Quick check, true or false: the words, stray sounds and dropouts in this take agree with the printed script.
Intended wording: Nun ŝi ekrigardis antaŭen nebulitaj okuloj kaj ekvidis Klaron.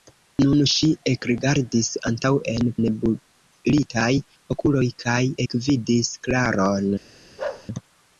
false